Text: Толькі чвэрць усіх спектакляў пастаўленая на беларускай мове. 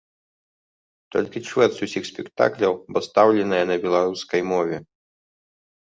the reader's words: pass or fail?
pass